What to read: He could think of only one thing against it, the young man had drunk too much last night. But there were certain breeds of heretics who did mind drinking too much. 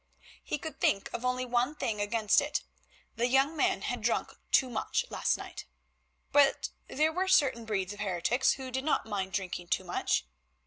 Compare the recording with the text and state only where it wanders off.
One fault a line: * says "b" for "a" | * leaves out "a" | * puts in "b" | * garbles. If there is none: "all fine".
* puts in "not"